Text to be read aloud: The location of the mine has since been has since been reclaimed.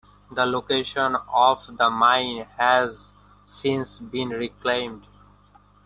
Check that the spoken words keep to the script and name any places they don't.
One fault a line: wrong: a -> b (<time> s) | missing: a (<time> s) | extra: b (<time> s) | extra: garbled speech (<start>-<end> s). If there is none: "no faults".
missing: has since been (4.3 s)